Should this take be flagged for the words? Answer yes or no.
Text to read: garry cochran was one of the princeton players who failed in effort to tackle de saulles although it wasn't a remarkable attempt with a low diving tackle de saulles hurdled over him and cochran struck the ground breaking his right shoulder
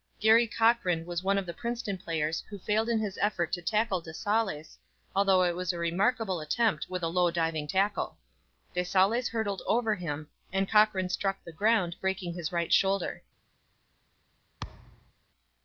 yes